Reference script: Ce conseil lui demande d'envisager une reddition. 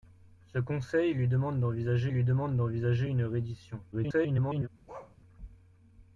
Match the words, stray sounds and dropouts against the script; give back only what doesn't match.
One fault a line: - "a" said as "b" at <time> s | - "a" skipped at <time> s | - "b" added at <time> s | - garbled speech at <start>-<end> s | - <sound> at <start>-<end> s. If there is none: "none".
- "lui demande d'envisager" added at 2.1 s
- garbled speech at 3.9-4.7 s
- bark at 4.9-5.2 s